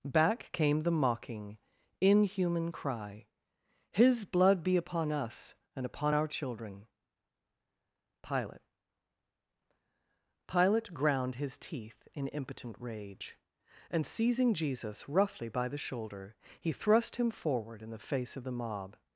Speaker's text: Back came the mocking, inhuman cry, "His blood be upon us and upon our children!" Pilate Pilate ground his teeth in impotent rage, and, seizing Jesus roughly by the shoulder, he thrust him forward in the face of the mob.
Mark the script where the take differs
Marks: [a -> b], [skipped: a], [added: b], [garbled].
Back came the mocking, inhuman cry, "His blood be upon us and upon our children!" Pilate Pilate ground his teeth in impotent rage, and, seizing Jesus roughly by the shoulder, he thrust him forward in the face of the mob.